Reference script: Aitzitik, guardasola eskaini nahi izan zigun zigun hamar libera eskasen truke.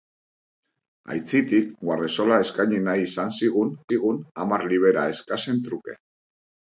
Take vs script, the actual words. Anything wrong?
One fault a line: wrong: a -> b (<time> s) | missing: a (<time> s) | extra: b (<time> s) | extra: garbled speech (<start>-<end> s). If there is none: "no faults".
no faults